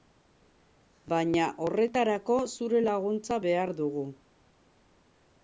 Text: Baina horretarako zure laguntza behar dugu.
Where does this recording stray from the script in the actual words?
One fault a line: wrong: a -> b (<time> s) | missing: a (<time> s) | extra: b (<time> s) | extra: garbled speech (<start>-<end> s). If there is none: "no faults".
no faults